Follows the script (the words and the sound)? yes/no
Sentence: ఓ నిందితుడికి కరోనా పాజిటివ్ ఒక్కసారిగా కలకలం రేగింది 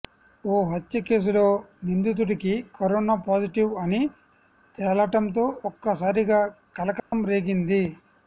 no